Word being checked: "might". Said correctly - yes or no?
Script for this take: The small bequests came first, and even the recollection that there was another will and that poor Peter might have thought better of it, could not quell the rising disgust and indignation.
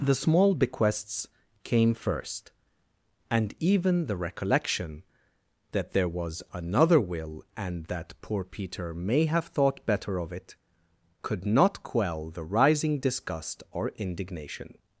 no